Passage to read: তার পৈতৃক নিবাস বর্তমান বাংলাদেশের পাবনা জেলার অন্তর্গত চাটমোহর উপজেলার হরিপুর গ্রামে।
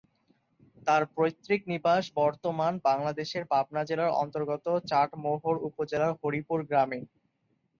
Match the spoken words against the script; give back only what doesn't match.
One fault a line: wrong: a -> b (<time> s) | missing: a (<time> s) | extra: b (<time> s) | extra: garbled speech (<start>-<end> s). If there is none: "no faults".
no faults